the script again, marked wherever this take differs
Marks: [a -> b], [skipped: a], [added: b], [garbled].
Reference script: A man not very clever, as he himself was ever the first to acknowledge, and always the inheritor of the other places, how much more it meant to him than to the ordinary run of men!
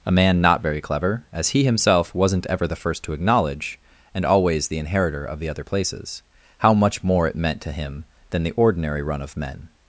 A man not very clever, as he himself [was -> wasn't] ever the first to acknowledge, and always the inheritor of the other places, how much more it meant to him than [skipped: to] the ordinary run of men!